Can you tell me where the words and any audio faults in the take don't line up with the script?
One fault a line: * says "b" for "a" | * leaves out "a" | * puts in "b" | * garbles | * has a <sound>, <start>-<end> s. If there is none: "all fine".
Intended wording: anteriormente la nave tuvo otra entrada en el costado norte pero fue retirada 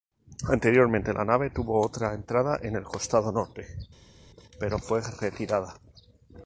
all fine